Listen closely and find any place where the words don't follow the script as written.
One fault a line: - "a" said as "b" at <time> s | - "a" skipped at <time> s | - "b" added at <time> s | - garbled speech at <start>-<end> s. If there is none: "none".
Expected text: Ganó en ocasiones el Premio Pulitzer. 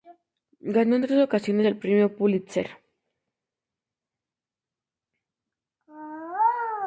- "tres" added at 1.0 s